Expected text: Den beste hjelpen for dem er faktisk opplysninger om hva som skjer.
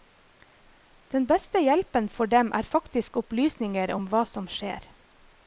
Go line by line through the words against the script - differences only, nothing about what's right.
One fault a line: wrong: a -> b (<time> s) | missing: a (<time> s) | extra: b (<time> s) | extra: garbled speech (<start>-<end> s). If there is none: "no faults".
no faults